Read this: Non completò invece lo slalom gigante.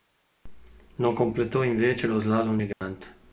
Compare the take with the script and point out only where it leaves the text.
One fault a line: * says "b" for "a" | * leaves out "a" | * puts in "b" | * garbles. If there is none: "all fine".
all fine